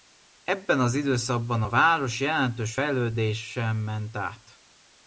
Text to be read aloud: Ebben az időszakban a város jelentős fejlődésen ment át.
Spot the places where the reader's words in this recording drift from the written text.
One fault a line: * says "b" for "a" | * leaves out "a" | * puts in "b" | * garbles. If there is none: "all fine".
all fine